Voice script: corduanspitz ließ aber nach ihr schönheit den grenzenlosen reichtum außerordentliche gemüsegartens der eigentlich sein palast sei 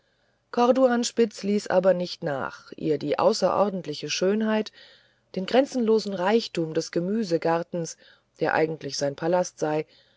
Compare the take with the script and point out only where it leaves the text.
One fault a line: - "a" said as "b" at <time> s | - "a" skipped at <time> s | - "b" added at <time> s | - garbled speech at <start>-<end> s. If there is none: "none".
- "nicht" added at 1.9 s
- "die außerordentliche" added at 3.0 s
- "außerordentliche" said as "des" at 6.7 s